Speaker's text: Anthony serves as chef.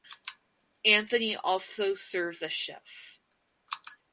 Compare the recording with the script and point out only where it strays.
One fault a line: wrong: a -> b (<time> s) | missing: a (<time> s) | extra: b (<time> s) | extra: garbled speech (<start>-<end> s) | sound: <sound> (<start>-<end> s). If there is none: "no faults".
extra: also (1.4 s)